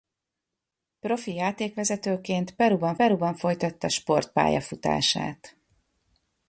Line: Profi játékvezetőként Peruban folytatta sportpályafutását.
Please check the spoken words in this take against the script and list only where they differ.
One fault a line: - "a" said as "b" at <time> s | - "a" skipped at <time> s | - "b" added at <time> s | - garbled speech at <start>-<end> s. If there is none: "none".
- "Peruban" added at 2.9 s